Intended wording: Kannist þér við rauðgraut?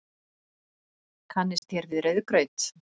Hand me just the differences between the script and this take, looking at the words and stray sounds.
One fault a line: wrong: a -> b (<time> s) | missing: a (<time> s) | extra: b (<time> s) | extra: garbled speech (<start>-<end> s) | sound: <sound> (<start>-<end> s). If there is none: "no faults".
sound: dropout (1.6-1.6 s)